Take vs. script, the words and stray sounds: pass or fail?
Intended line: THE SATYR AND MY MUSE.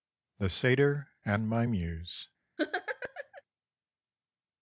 fail